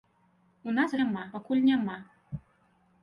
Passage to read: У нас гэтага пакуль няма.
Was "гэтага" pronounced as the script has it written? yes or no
no